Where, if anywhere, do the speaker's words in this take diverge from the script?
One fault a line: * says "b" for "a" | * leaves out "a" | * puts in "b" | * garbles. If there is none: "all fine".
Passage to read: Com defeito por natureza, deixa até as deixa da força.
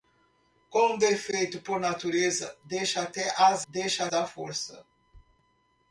all fine